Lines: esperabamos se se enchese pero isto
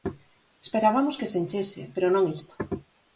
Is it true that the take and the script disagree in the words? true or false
true